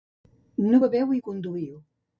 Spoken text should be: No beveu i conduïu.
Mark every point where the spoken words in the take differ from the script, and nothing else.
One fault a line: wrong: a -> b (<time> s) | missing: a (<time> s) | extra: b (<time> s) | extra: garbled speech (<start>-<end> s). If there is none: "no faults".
no faults